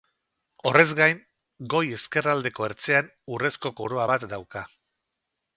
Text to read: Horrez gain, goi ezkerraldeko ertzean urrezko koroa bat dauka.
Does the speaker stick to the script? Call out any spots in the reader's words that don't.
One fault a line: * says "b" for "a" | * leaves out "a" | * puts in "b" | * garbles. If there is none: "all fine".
all fine